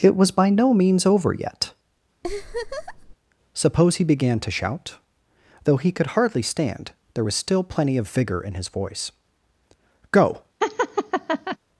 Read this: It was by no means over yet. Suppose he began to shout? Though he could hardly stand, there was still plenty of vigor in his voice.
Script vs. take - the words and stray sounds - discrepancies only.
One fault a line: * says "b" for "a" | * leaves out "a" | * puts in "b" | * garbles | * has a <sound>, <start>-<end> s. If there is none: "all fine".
* has a laugh, 2.2-3.2 s
* puts in "Go"
* has a laugh, 10.6-11.6 s